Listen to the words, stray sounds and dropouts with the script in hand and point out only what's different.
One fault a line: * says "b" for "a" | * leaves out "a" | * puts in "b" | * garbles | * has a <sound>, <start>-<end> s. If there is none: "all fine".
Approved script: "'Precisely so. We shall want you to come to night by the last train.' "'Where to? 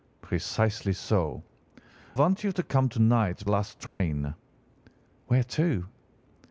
* leaves out "We shall"
* leaves out "by the"
* has a dropout, 3.9-4.0 s